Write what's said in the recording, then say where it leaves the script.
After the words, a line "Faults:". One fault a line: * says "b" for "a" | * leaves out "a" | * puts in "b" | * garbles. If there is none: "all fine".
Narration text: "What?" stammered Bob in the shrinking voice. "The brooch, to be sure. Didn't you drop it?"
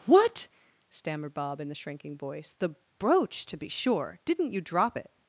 "What?" stammered Bob in the shrinking voice. "The brooch, to be sure. Didn't you drop it?"
Faults:
all fine